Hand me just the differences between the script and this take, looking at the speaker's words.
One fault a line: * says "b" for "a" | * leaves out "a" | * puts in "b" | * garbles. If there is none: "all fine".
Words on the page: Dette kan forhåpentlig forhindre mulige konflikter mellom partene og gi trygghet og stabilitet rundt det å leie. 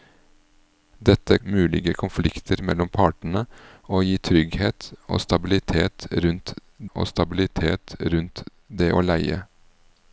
* leaves out "kan forhåpentlig forhindre"
* puts in "og stabilitet rundt"